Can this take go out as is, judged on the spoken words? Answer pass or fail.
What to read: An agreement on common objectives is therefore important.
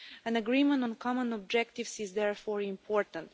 pass